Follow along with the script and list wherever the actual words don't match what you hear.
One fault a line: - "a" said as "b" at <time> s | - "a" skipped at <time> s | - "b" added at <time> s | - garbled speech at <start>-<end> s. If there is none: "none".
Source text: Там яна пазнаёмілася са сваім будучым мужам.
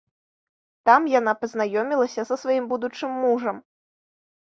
none